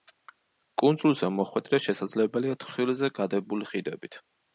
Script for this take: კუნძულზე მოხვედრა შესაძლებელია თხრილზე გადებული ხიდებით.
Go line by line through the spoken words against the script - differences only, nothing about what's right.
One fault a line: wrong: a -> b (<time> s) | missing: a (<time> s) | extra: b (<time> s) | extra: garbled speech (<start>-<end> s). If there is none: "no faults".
no faults